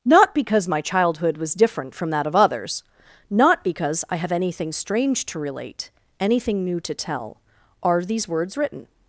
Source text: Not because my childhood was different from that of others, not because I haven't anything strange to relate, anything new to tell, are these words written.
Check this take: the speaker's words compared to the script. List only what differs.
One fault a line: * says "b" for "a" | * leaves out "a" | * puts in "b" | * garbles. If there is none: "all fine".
* says "have" for "haven't"